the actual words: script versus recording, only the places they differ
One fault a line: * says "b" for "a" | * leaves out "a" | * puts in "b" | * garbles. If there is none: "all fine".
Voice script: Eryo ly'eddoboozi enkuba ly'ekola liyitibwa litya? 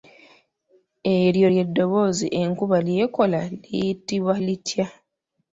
all fine